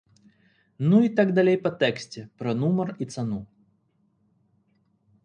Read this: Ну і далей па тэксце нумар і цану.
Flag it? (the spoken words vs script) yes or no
yes